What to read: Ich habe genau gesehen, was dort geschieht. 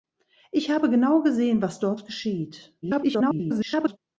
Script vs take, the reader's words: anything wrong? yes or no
yes